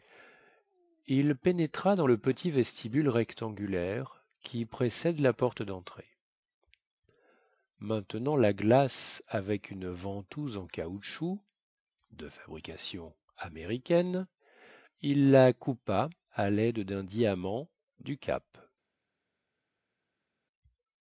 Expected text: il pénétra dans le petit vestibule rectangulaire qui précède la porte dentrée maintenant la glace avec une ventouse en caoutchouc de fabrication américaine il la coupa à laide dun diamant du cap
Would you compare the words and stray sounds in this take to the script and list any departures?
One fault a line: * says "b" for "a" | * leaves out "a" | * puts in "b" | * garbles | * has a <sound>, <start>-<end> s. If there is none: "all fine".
all fine